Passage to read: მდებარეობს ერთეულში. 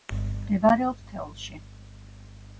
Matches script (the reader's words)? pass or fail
pass